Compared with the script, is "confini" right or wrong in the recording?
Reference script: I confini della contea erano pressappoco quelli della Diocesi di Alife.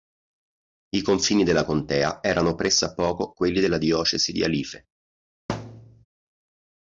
right